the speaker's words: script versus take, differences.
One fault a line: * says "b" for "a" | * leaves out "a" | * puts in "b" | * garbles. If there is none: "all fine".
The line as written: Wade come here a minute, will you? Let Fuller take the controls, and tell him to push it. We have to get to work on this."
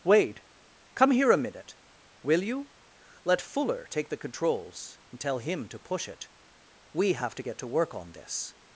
all fine